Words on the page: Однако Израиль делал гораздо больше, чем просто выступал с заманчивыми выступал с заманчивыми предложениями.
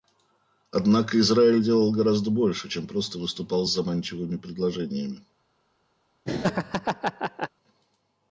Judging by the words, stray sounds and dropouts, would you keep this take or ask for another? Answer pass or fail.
fail